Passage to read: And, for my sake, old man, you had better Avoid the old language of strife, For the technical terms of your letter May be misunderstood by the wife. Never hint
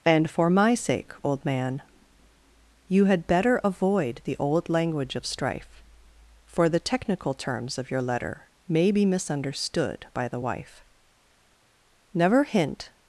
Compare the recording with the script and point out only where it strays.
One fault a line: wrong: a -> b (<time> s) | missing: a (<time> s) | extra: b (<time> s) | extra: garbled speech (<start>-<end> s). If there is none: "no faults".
no faults